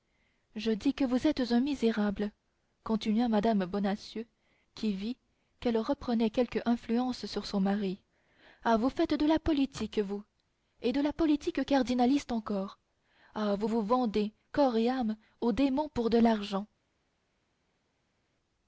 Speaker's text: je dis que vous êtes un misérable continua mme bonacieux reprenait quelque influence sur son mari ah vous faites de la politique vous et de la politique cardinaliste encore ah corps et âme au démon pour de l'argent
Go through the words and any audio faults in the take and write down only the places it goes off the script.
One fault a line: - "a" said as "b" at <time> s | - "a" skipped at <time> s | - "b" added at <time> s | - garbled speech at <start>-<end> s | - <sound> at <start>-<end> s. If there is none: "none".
- "qui vit qu'elle" added at 4.7 s
- "vous vous vendez" added at 13.6 s